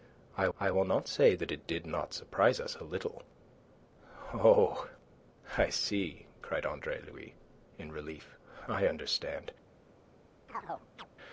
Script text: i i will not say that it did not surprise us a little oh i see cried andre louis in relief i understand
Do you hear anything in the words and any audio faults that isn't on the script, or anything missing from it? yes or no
yes